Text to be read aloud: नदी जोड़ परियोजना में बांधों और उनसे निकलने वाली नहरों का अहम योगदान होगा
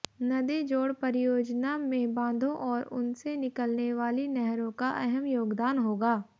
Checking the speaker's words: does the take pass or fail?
pass